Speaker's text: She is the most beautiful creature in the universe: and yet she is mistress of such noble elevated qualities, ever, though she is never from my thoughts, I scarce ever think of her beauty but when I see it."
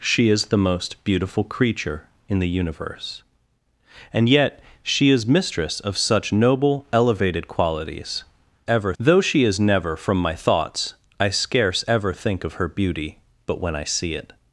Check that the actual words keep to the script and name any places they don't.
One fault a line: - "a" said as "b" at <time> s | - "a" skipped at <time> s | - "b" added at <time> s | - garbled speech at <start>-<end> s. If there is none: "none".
none